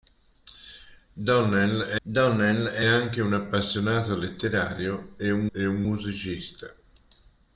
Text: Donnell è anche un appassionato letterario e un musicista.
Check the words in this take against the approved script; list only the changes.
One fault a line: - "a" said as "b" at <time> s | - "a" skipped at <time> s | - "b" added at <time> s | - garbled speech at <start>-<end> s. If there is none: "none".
- "donnell è" added at 2.0 s
- "e un" added at 5.5 s